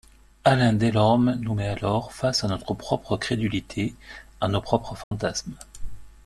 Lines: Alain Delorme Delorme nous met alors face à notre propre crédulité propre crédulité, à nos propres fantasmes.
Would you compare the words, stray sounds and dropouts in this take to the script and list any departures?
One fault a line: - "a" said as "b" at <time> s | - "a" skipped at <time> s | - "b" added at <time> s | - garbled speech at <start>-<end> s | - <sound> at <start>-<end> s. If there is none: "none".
- "Delorme" skipped at 1.4 s
- "propre crédulité" skipped at 4.0 s
- dropout at 5.0-5.1 s